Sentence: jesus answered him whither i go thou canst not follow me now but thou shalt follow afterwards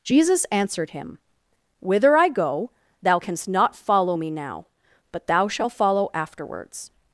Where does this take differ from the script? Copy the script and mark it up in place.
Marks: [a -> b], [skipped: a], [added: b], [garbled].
jesus answered him whither i go thou canst not follow me now but thou shalt follow afterwards